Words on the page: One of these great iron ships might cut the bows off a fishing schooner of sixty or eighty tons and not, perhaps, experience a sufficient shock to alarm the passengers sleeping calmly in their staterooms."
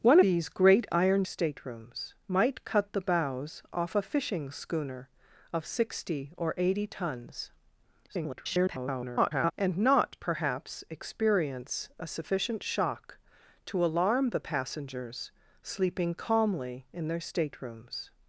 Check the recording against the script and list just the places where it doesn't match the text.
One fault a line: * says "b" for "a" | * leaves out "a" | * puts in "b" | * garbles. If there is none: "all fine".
* leaves out "of"
* says "staterooms" for "ships"
* garbles